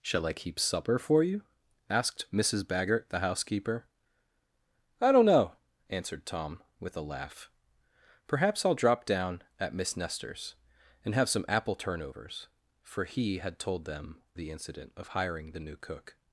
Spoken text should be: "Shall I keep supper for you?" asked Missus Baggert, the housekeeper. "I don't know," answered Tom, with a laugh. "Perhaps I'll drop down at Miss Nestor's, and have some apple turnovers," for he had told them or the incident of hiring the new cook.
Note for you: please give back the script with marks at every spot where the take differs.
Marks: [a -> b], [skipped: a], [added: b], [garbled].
"Shall I keep supper for you?" asked Missus Baggert, the housekeeper. "I don't know," answered Tom, with a laugh. "Perhaps I'll drop down at Miss Nestor's, and have some apple turnovers," for he had told them [skipped: or] the incident of hiring the new cook.